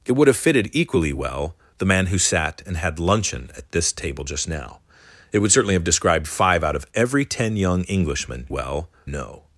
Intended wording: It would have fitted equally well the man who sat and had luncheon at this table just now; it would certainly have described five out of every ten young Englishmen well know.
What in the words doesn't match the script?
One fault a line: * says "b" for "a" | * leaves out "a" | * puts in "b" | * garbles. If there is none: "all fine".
all fine